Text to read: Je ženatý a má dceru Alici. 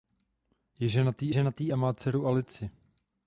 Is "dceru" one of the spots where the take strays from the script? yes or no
no